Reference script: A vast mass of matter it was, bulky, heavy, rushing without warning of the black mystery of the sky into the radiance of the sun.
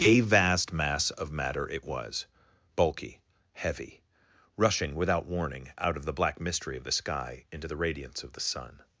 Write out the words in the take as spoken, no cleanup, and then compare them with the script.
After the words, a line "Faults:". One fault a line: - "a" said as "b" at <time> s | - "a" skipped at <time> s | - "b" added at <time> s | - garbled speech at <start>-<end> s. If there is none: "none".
A vast mass of matter it was, bulky, heavy, rushing without warning out of the black mystery of the sky into the radiance of the sun.
Faults:
- "out" added at 5.8 s